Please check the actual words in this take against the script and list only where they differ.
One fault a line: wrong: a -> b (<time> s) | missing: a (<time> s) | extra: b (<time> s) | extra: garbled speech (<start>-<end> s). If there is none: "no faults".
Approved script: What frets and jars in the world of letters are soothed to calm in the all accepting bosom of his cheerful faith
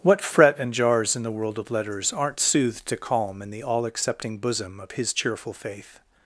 wrong: frets -> fret (0.2 s)
wrong: are -> aren't (2.1 s)